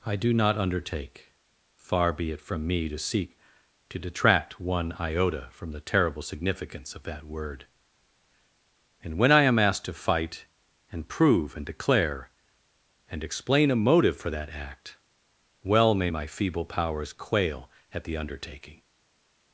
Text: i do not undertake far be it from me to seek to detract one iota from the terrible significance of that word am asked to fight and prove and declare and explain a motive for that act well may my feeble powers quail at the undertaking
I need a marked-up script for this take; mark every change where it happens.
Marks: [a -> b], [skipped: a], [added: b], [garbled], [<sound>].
i do not undertake far be it from me to seek to detract one iota from the terrible significance of that word [added: and when i] am asked to fight and prove and declare and explain a motive for that act well may my feeble powers quail at the undertaking